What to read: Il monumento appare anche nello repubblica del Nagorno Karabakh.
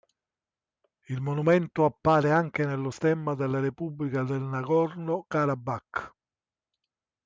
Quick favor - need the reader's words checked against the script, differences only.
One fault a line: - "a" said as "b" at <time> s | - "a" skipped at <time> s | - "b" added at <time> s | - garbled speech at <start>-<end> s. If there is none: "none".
- "stemma della" added at 2.9 s